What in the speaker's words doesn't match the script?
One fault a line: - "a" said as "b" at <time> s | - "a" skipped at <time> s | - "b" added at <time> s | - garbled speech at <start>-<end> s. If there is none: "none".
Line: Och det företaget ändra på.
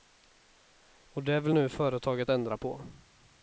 - "vill nu" added at 1.4 s